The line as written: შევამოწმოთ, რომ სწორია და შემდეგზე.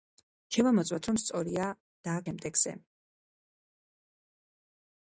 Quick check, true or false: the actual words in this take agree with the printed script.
true